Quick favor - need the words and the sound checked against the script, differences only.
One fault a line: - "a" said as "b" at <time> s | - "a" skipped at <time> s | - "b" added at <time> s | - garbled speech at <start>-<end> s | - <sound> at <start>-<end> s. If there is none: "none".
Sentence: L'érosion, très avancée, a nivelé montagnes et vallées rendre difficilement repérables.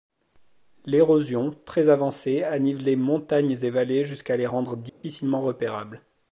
- "jusqu'à les" added at 4.0 s
- dropout at 4.9-5.0 s